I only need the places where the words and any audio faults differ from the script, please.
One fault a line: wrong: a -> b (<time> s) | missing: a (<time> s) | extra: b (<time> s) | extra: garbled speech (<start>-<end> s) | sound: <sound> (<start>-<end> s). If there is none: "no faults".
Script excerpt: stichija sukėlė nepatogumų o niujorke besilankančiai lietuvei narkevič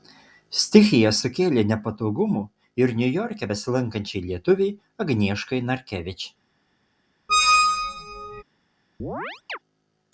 wrong: o -> ir (2.8 s)
extra: agnieškai (5.1 s)
sound: squeak (7.3-8.4 s)
sound: chirp (9.0-9.6 s)